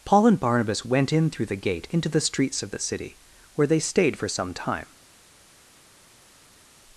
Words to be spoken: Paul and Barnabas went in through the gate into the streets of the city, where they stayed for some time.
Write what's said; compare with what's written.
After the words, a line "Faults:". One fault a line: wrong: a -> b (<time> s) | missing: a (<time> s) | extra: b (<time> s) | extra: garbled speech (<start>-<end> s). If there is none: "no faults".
Paul and Barnabas went in through the gate into the streets of the city, where they stayed for some time.
Faults:
no faults